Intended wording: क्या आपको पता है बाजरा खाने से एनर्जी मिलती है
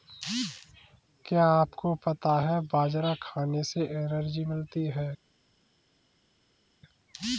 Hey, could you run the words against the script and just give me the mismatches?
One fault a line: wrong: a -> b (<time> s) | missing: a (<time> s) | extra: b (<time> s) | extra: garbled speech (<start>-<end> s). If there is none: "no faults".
no faults